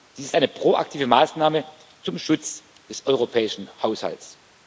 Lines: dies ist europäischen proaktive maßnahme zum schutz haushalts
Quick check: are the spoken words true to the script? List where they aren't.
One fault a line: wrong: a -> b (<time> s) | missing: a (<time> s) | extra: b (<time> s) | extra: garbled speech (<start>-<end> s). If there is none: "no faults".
wrong: europäischen -> eine (0.3 s)
extra: des europäischen (2.9 s)